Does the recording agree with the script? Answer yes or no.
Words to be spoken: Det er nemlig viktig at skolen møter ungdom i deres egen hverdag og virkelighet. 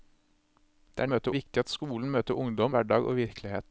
no